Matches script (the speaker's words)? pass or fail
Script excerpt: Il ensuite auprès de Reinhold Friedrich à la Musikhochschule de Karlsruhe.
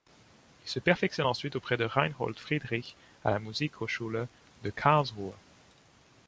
fail